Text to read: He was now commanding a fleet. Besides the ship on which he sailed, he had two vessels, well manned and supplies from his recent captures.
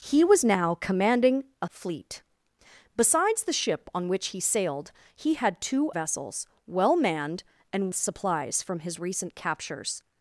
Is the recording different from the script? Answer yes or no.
no